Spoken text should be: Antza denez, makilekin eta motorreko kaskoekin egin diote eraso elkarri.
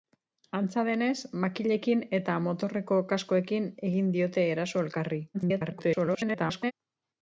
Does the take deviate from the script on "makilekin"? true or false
false